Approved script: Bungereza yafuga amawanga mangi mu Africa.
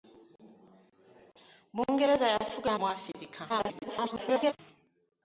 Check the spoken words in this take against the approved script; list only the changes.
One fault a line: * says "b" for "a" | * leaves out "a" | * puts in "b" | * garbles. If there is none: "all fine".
* leaves out "amawanga mangi"
* garbles